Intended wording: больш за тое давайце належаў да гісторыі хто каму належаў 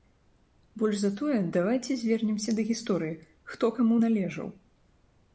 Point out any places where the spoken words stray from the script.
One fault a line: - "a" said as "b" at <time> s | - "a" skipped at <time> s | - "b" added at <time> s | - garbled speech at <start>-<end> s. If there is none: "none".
- "належаў" said as "звернемся" at 2.0 s